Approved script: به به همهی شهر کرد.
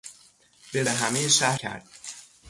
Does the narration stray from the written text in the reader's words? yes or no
no